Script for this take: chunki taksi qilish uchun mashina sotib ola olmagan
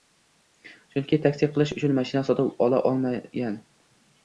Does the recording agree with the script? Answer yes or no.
yes